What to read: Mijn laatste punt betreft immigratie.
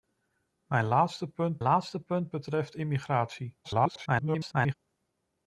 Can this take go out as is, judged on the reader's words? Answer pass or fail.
fail